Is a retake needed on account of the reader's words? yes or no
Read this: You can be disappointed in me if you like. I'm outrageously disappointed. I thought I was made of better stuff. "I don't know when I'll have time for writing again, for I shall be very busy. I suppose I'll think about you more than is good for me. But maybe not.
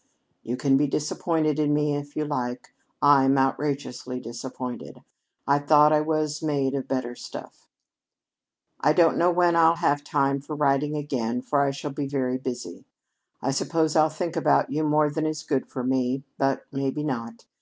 no